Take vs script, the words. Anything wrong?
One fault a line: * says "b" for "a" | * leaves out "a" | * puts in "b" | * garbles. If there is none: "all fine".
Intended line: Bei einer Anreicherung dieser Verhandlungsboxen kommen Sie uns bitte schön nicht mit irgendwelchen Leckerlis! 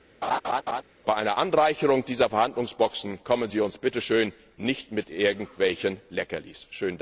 all fine